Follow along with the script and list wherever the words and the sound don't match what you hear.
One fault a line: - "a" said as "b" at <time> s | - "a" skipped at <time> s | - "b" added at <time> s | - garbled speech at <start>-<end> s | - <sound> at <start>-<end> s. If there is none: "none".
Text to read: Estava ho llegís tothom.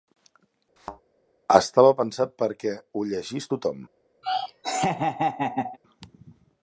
- thud at 0.8-1.0 s
- "pensat perquè" added at 2.0 s
- laugh at 4.2-5.8 s